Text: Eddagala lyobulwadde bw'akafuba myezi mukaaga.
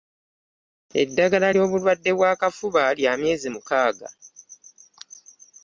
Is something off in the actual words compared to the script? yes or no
yes